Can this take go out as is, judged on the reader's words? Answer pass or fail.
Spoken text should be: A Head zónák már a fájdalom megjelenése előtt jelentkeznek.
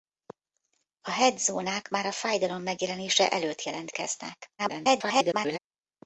fail